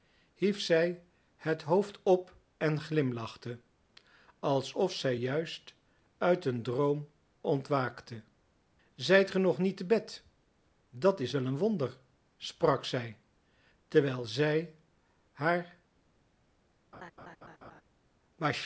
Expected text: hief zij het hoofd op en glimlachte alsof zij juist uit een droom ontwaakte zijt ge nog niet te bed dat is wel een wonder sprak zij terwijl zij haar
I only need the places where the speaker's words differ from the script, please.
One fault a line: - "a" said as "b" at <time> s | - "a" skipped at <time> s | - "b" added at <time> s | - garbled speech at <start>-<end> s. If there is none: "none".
none